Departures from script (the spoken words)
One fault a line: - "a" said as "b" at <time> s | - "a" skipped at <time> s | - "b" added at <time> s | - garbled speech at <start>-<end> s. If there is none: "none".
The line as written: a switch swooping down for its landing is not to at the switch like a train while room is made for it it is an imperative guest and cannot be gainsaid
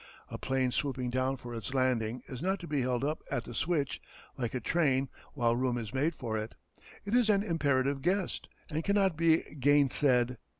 - "switch" said as "plane" at 0.4 s
- "be held up" added at 2.7 s